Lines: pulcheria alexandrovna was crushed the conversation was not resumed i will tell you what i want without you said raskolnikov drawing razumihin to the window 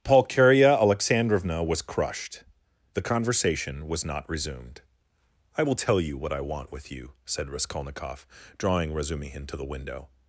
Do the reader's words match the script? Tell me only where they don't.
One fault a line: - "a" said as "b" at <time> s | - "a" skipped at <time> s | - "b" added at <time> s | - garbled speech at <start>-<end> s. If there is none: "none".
- "without" said as "with" at 6.7 s